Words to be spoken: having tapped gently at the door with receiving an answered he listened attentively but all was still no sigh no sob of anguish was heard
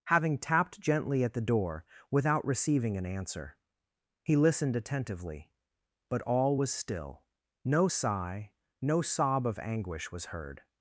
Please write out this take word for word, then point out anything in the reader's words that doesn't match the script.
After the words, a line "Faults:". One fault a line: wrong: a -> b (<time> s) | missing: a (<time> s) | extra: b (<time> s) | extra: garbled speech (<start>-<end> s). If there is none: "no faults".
having tapped gently at the door without receiving an answer he listened attentively but all was still no sigh no sob of anguish was heard
Faults:
wrong: with -> without (2.1 s)
wrong: answered -> answer (3.0 s)